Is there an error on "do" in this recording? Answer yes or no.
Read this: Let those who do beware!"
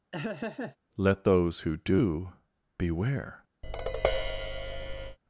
no